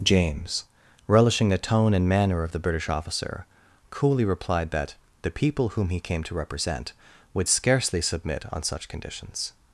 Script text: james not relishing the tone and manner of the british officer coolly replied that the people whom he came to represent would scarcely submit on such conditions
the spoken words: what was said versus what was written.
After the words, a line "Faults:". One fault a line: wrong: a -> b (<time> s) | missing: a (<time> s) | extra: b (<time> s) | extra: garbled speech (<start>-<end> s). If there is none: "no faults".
james relishing the tone and manner of the british officer coolly replied that the people whom he came to represent would scarcely submit on such conditions
Faults:
missing: not (0.7 s)